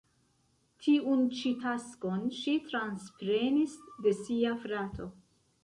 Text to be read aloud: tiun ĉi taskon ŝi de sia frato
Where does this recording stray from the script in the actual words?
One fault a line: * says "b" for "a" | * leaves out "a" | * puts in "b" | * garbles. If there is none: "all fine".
* puts in "transprenis"